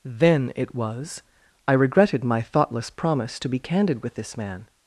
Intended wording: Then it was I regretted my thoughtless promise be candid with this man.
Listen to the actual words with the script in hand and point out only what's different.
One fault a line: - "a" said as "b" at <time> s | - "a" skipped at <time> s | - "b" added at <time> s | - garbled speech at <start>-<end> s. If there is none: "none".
- "to" added at 3.4 s